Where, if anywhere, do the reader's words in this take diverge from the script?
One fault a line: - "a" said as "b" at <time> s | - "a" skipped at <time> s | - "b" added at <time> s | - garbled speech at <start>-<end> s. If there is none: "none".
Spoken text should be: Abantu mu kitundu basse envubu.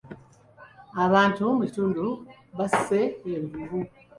none